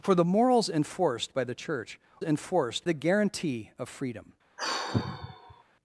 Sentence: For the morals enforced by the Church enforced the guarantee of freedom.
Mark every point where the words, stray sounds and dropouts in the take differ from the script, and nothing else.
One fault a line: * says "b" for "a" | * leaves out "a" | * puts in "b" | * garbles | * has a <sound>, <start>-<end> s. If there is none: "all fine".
* has a sigh, 4.6-5.6 s